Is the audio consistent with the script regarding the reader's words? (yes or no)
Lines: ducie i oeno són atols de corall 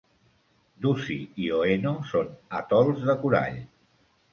yes